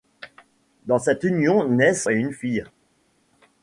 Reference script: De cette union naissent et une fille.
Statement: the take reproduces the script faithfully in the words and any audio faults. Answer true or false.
true